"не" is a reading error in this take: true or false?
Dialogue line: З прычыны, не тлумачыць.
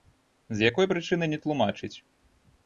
false